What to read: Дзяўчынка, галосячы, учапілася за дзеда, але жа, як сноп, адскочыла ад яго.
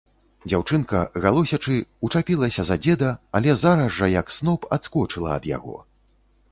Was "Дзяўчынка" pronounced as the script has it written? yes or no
yes